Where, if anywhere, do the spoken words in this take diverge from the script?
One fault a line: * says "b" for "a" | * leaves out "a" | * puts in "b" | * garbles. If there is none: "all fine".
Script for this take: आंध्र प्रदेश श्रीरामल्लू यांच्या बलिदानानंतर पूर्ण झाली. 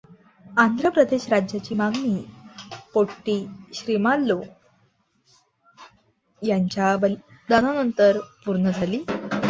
* puts in "राज्याची मागणी पोट्टी"